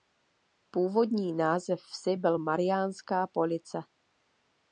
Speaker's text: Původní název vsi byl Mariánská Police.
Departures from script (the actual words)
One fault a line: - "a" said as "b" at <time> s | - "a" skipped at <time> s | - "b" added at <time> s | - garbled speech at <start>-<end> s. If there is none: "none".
none